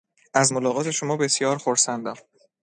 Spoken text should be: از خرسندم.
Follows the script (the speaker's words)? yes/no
no